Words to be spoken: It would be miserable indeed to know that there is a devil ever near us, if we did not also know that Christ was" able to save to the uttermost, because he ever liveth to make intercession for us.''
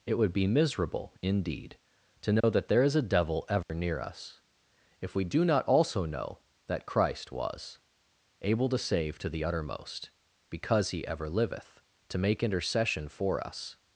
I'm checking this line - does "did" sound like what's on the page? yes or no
no